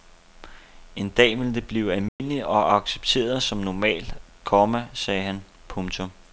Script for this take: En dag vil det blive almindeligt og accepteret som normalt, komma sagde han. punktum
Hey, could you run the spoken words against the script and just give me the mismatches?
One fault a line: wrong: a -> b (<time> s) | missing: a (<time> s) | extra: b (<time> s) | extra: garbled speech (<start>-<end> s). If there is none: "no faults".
no faults